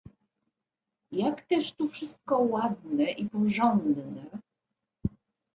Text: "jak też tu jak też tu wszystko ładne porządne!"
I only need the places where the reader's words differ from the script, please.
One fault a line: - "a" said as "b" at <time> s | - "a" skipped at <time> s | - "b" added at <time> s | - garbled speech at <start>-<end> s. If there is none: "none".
- "jak też tu" skipped at 1.9 s
- "i" added at 3.1 s